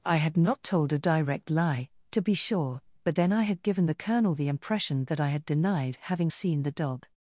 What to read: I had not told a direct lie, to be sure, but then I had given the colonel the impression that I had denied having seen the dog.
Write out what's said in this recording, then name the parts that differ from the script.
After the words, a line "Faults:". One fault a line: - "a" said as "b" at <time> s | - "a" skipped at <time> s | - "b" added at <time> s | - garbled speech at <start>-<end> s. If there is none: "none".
I had not told a direct lie, to be sure, but then I had given the colonel the impression that I had denied having seen the dog.
Faults:
none